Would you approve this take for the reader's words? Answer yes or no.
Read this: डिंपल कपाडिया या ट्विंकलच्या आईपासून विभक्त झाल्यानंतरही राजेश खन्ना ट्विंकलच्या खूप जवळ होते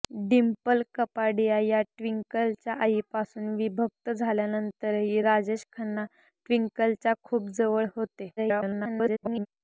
no